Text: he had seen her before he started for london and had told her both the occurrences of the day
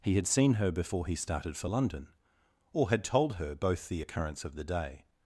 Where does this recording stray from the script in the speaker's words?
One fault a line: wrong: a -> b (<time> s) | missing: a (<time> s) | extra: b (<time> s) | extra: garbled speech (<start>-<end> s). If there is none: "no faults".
wrong: and -> or (2.7 s)
wrong: occurrences -> occurrence (4.0 s)